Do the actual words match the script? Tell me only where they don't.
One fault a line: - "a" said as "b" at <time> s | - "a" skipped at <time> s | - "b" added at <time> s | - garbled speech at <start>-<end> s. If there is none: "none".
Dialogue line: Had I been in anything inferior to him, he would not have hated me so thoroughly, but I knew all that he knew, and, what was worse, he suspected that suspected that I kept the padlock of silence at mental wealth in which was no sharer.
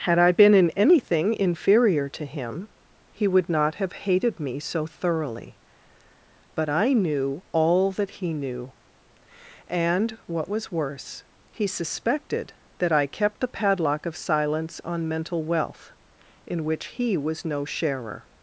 - "suspected that" skipped at 12.9 s
- "at" said as "on" at 14.8 s
- "he" added at 16.8 s